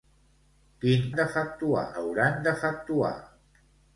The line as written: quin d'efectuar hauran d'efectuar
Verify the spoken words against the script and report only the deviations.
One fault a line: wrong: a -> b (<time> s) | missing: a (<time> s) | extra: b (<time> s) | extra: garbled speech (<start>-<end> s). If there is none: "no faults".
no faults